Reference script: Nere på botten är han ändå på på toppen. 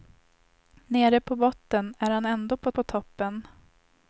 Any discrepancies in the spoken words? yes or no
no